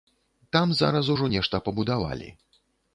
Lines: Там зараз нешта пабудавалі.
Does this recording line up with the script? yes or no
no